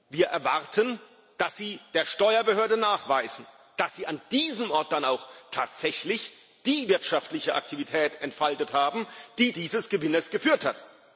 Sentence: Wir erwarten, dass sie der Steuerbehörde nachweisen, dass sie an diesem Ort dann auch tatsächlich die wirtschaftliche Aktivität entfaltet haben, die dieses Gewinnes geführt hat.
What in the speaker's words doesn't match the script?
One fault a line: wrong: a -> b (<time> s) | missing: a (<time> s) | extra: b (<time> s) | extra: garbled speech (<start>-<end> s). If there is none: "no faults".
no faults